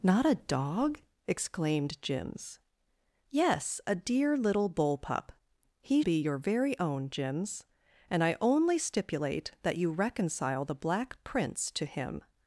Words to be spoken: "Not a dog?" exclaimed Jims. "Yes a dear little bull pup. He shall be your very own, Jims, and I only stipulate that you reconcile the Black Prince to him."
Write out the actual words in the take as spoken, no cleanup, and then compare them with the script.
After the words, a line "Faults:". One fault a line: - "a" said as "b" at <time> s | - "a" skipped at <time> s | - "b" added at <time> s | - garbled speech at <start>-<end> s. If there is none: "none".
"Not a dog?" exclaimed Jims. "Yes a dear little bull pup. He be your very own, Jims, and I only stipulate that you reconcile the Black Prince to him."
Faults:
- "shall" skipped at 6.0 s